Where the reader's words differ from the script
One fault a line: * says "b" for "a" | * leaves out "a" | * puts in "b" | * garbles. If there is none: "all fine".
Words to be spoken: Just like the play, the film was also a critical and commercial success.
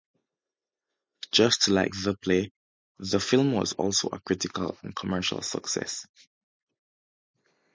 all fine